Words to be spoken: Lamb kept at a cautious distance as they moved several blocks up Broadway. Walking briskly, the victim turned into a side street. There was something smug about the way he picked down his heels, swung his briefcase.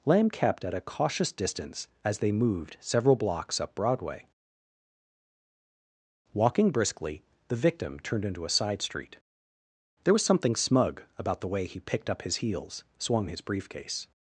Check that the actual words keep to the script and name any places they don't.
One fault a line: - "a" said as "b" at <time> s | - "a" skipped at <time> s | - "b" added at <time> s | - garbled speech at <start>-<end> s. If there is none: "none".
- "down" said as "up" at 12.1 s